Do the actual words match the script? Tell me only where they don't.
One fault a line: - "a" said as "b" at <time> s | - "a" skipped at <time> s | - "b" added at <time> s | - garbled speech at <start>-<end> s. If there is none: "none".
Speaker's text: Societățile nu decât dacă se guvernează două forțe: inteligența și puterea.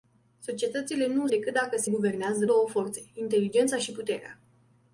none